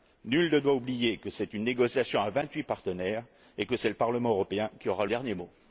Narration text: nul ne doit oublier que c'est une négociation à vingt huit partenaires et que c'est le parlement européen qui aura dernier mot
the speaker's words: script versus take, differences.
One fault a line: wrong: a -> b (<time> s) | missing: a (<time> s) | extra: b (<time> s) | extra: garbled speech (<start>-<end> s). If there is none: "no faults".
no faults